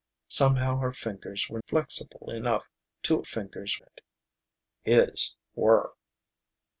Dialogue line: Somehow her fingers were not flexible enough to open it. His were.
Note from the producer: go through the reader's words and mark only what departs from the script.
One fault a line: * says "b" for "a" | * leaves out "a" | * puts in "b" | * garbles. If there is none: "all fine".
* leaves out "not"
* says "fingers" for "open"